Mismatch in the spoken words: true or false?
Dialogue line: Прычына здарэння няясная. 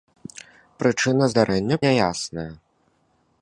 false